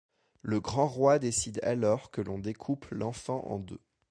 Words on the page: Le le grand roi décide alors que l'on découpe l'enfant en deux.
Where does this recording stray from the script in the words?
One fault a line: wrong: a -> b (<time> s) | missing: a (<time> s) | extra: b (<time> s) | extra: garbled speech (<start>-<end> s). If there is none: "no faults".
missing: le (0.6 s)